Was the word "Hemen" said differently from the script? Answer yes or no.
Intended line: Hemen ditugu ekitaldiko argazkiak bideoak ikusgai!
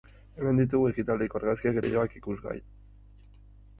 no